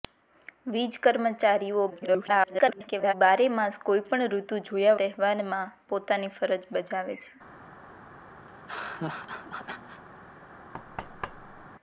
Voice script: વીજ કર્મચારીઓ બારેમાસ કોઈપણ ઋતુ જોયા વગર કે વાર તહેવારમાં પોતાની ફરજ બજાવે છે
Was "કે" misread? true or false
true